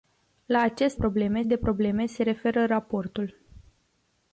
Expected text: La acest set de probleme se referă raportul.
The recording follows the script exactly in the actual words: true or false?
false